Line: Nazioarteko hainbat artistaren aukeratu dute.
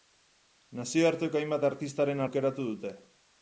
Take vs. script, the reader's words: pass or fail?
pass